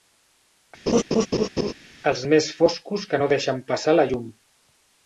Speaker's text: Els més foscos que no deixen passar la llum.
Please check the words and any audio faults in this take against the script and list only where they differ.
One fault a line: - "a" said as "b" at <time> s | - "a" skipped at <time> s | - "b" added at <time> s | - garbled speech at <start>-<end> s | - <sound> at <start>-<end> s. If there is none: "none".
- laugh at 0.9-1.7 s